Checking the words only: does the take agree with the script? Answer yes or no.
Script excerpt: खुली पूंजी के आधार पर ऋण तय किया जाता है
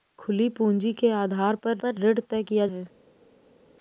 no